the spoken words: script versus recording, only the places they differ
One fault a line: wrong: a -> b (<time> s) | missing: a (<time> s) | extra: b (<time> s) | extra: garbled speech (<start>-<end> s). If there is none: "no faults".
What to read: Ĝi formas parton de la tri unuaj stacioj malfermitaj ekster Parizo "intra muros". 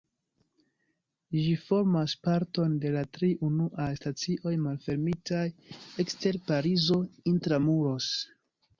no faults